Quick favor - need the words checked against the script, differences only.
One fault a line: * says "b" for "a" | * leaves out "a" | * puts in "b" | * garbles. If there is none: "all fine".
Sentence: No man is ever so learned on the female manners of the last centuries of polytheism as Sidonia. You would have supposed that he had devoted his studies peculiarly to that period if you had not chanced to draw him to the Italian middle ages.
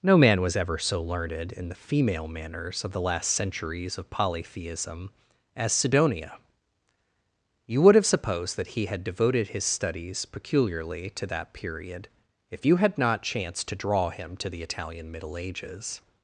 * says "was" for "is"
* says "in" for "on"